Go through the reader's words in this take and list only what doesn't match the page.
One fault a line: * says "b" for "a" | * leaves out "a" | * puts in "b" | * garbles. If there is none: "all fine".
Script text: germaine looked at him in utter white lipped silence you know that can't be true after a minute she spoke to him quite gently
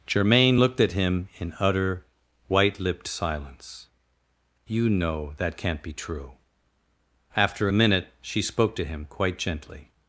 all fine